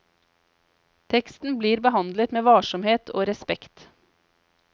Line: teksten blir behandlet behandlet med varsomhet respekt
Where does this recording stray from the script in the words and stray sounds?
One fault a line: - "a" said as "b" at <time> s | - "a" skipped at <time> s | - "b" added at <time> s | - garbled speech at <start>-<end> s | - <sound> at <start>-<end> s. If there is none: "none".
- "behandlet" skipped at 2.3 s
- "og" added at 3.1 s